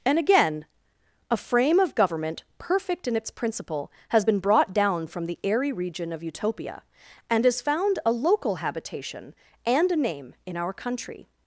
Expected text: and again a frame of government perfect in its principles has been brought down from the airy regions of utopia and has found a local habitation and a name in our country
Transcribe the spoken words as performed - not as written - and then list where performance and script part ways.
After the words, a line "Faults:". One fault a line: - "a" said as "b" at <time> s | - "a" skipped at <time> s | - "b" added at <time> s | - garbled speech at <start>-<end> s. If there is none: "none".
and again a frame of government perfect in its principle has been brought down from the airy region of utopia and has found a local habitation and a name in our country
Faults:
- "principles" said as "principle" at 3.3 s
- "regions" said as "region" at 5.7 s